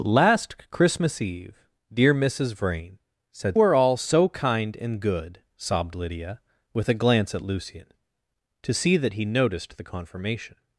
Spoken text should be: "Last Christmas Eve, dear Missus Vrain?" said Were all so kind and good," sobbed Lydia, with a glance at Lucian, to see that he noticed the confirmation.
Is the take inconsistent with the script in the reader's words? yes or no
no